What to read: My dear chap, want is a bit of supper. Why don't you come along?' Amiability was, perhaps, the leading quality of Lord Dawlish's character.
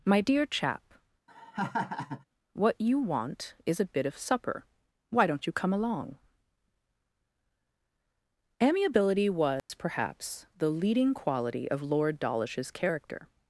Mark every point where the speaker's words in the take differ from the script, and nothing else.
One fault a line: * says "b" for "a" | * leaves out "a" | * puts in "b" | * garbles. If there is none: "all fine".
* puts in "what you"